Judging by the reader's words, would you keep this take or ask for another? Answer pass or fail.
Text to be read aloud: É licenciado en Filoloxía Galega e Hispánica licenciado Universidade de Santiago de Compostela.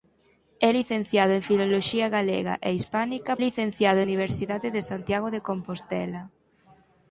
pass